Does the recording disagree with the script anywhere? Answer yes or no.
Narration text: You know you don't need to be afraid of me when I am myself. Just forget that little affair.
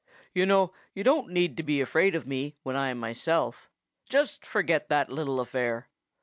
no